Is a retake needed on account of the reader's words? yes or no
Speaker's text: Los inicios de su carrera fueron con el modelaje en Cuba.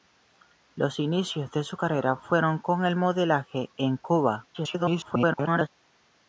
yes